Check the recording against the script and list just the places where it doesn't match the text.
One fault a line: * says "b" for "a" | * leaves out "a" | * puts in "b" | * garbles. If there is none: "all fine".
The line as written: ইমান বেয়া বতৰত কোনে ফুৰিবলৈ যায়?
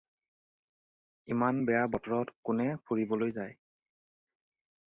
all fine